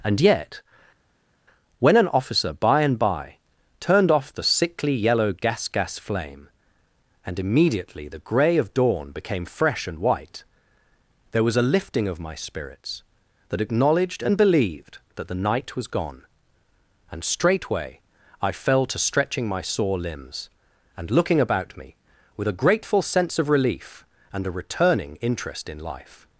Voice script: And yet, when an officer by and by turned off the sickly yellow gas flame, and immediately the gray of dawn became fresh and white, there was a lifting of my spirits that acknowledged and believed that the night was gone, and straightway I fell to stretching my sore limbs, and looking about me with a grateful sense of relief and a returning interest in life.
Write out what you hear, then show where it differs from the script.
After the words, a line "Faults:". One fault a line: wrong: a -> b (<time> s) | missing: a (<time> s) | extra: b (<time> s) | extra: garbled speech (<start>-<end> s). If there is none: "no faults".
And yet, when an officer by and by turned off the sickly yellow gas gas flame, and immediately the gray of dawn became fresh and white, there was a lifting of my spirits that acknowledged and believed that the night was gone, and straightway I fell to stretching my sore limbs, and looking about me with a grateful sense of relief and a returning interest in life.
Faults:
extra: gas (5.7 s)